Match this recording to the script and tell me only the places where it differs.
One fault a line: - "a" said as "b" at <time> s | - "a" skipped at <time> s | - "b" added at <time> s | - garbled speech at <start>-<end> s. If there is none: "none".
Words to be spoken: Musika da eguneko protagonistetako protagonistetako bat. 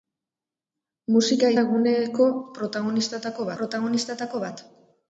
none